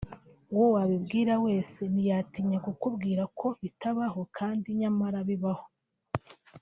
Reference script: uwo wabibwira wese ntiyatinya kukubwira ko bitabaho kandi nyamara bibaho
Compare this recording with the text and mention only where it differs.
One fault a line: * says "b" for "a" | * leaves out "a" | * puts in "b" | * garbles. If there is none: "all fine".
all fine